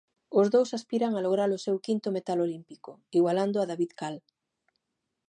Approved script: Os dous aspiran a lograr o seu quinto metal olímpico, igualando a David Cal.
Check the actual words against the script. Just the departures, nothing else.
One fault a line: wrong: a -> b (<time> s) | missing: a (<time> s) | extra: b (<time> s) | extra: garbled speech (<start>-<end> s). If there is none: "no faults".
no faults